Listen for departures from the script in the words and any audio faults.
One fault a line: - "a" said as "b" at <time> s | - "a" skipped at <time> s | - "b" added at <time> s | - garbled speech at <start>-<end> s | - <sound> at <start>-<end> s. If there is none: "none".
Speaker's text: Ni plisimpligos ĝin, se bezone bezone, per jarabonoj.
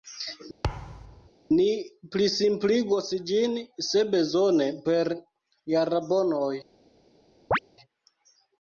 - thud at 0.6-1.3 s
- "bezone" skipped at 4.7 s
- chirp at 7.5-7.6 s